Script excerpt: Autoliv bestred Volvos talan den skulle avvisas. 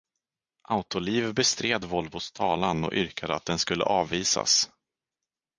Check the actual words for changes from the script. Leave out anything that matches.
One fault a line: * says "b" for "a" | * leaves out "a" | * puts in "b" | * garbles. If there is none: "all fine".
* puts in "och yrkade att"